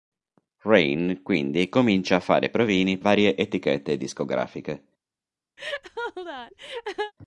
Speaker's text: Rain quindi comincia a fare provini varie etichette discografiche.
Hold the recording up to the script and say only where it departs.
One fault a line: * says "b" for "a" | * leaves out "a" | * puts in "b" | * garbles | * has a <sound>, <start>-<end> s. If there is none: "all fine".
* has a laugh, 5.6-7.1 s